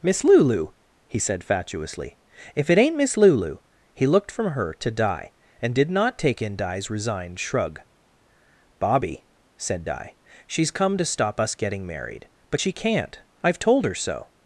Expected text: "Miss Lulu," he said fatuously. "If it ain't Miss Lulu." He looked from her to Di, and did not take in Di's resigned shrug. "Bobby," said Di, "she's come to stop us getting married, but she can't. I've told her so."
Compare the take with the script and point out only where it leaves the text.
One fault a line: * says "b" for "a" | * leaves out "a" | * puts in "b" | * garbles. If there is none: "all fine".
all fine